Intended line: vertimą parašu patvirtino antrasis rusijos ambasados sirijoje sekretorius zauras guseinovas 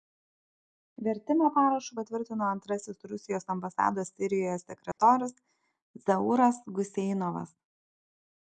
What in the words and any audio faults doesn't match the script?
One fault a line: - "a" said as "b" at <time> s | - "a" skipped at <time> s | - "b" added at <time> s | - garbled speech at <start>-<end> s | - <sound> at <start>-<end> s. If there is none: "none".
- dropout at 4.9-5.0 s